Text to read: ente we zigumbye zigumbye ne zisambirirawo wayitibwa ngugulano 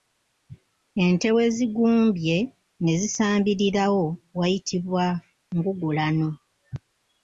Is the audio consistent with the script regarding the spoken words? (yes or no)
no